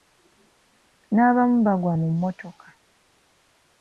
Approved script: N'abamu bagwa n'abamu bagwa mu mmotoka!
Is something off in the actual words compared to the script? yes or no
yes